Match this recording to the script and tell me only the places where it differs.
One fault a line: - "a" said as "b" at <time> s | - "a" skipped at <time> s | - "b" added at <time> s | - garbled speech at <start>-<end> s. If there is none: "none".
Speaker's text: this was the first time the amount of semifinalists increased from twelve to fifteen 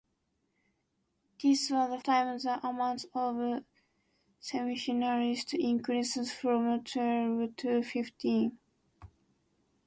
- "first" skipped at 2.0 s